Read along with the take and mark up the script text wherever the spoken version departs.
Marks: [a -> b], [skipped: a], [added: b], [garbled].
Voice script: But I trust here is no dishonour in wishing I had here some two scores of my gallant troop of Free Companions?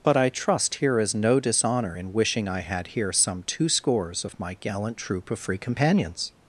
But I trust here is no dishonour in wishing I had here some two scores of my gallant troop of Free Companions?